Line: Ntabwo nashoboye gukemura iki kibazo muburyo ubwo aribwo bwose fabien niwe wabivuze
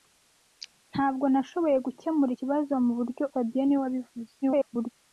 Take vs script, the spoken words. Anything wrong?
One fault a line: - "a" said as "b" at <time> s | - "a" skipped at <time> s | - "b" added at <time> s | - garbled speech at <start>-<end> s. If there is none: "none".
- "iki" skipped at 2.3 s
- "ubwo aribwo bwose" skipped at 3.2 s
- garbled speech at 4.4-4.9 s